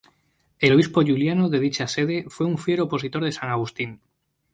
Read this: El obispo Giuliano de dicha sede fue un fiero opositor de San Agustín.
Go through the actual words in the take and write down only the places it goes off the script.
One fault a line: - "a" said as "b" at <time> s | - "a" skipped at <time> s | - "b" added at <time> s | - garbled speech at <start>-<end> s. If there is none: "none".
none